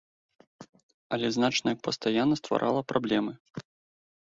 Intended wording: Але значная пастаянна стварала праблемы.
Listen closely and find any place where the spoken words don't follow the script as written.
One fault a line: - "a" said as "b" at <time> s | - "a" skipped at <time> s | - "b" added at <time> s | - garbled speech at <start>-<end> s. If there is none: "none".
none